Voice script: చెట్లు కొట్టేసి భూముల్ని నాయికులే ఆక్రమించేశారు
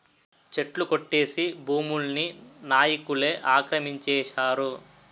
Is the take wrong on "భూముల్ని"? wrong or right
right